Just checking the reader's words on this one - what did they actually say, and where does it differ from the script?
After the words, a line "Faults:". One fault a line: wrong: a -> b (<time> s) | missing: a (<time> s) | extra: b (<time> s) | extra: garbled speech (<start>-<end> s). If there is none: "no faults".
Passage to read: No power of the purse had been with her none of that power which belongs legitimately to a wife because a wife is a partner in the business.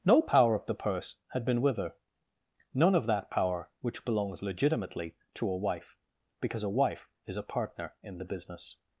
No power of the purse had been with her none of that power which belongs legitimately to a wife because a wife is a partner in the business.
Faults:
no faults